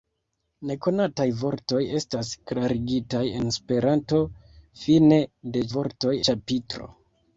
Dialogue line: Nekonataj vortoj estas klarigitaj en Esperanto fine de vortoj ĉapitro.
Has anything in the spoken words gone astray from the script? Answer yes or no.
no